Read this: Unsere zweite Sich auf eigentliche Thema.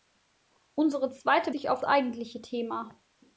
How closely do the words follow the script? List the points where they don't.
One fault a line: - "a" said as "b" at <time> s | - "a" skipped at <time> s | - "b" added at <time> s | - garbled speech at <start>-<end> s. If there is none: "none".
none